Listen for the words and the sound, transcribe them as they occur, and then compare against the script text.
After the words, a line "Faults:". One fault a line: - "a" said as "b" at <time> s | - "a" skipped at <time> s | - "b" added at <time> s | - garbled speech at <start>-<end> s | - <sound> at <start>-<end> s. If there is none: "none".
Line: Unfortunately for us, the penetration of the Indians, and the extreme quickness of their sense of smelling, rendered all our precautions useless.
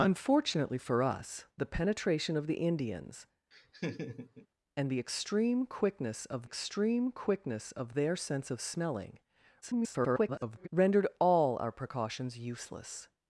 Unfortunately for us, the penetration of the Indians, and the extreme quickness of extreme quickness of their sense of smelling, [garbled] rendered all our precautions useless.
Faults:
- laugh at 3.5-4.5 s
- "extreme quickness of" added at 6.4 s
- garbled speech at 9.6-10.7 s